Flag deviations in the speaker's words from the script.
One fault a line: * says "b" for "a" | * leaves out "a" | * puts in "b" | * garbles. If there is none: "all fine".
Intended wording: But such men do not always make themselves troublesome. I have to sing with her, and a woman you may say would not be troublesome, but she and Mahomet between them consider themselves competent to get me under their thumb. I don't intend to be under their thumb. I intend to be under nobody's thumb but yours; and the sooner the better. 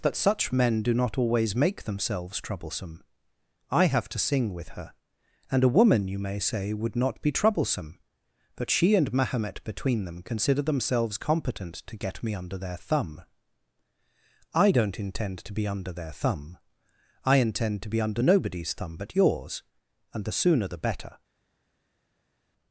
* says "That" for "But"